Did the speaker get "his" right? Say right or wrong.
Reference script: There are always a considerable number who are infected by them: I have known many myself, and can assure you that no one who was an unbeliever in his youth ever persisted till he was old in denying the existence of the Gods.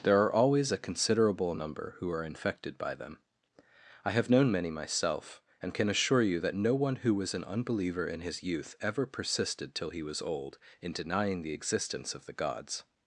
right